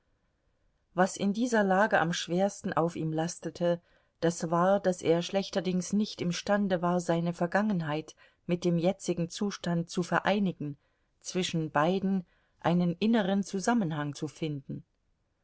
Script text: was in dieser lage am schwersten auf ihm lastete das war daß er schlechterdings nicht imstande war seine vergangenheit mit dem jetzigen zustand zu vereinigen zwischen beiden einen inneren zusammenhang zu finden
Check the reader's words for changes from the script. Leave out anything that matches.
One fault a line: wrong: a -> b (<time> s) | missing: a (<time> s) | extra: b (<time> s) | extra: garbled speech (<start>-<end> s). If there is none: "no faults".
no faults